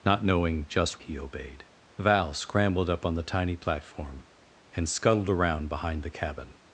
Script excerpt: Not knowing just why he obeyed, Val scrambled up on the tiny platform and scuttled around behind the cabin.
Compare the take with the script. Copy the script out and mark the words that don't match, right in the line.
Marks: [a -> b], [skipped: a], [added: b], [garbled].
Not knowing just [skipped: why] he obeyed, Val scrambled up on the tiny platform and scuttled around behind the cabin.